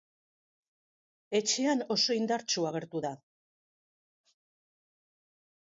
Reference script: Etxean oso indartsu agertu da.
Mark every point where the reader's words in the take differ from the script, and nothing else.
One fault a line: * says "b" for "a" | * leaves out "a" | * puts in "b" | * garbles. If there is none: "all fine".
all fine